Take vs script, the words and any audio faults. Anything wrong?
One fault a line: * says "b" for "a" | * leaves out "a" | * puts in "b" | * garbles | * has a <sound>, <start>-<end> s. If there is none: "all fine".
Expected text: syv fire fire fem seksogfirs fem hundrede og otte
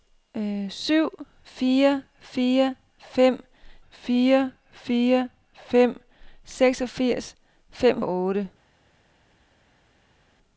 * puts in "fire fire fem"
* leaves out "hundrede"